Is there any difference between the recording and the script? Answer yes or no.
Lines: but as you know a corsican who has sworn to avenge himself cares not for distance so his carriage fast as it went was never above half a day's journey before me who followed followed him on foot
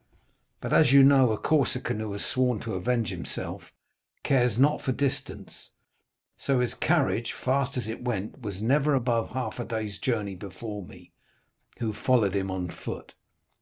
yes